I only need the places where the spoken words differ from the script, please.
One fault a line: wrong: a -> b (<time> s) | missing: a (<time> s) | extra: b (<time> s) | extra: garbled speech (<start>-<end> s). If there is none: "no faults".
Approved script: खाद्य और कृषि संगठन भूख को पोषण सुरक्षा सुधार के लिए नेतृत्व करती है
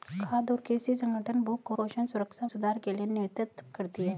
no faults